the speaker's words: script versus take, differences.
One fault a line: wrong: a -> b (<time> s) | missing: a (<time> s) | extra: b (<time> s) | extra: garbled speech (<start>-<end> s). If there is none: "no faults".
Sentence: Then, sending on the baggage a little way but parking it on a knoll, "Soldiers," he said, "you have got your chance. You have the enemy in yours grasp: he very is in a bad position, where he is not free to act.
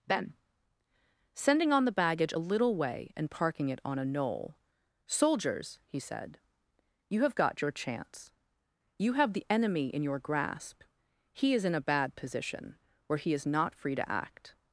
wrong: but -> and (3.1 s)
wrong: yours -> your (10.0 s)
missing: very (11.5 s)